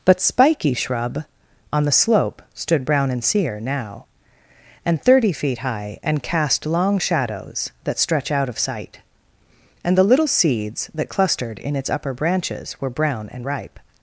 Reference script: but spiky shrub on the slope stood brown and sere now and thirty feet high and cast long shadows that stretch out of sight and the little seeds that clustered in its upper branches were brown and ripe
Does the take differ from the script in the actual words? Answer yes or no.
no